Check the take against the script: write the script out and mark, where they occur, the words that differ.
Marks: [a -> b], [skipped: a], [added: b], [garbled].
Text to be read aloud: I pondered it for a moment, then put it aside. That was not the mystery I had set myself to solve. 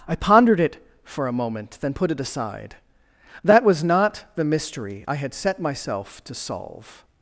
I pondered it for a moment, then put it aside. That was not the mystery I had set myself to solve.